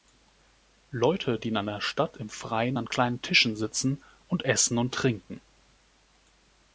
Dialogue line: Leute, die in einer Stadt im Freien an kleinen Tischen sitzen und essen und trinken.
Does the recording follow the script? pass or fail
pass